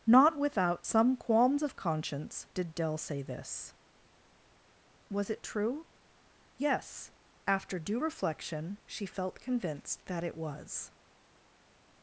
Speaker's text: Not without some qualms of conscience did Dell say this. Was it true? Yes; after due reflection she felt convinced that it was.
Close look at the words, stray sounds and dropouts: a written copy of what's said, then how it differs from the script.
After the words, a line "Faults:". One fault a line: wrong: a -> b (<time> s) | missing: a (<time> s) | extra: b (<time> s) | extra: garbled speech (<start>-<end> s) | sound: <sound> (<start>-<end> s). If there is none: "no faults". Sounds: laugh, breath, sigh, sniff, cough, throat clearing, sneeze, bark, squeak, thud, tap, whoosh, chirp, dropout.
Not without some qualms of conscience did Dell say this. Was it true? Yes; after due reflection she felt convinced that it was.
Faults:
no faults